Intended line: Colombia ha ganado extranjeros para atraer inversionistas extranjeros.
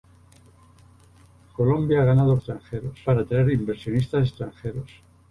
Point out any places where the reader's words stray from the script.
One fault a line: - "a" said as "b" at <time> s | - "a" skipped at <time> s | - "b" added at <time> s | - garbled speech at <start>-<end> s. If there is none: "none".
none